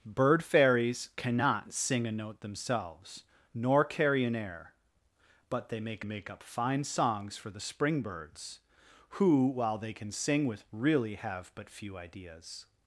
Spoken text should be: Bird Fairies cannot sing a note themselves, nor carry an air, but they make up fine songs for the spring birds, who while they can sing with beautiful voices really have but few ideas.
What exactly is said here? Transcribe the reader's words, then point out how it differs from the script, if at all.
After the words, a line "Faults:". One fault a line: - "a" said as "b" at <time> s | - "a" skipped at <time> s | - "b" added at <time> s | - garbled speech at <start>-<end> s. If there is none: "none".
Bird Fairies cannot sing a note themselves, nor carry an air, but they make make up fine songs for the spring birds, who while they can sing with really have but few ideas.
Faults:
- "make" added at 6.0 s
- "beautiful voices" skipped at 10.7 s